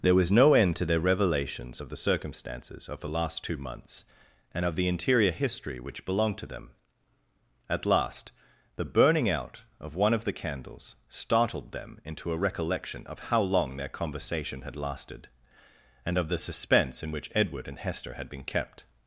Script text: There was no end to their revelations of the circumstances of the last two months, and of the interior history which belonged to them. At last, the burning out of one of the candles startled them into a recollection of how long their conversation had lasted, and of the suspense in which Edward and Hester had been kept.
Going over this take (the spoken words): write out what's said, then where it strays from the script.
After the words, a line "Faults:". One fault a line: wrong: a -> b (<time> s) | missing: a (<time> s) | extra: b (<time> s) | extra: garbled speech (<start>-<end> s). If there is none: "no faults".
There was no end to their revelations of the circumstances of the last two months, and of the interior history which belonged to them. At last, the burning out of one of the candles startled them into a recollection of how long their conversation had lasted, and of the suspense in which Edward and Hester had been kept.
Faults:
no faults